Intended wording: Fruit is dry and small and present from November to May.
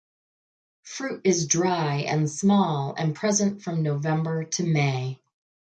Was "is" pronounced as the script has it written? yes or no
yes